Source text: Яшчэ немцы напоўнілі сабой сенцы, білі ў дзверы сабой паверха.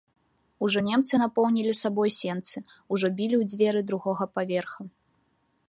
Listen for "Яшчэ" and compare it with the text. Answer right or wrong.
wrong